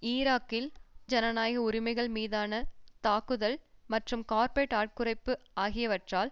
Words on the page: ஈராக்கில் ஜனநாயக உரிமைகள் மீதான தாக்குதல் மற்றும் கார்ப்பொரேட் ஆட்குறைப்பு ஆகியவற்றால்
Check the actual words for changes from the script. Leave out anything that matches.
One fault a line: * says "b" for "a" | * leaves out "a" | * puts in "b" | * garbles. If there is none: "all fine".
all fine